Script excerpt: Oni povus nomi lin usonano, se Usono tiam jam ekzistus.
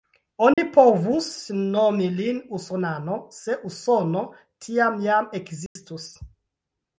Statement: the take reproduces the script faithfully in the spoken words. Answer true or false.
true